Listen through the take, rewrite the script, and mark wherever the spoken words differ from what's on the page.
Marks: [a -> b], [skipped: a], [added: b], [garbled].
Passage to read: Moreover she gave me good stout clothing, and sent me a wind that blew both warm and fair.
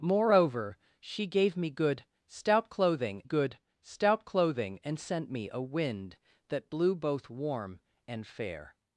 Moreover she gave me good stout clothing, [added: good stout clothing] and sent me a wind that blew both warm and fair.